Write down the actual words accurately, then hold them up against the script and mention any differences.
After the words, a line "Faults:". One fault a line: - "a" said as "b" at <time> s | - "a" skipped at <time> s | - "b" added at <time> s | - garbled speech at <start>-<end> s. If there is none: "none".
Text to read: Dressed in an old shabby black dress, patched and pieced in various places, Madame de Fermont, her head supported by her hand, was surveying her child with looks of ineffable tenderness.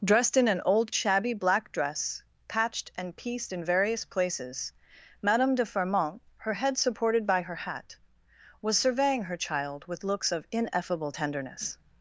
Dressed in an old shabby black dress, patched and pieced in various places, Madame de Fermont, her head supported by her hat, was surveying her child with looks of ineffable tenderness.
Faults:
- "hand" said as "hat" at 7.6 s